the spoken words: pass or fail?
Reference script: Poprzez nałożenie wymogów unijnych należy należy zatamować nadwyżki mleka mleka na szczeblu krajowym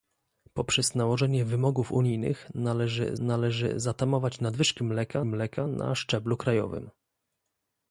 pass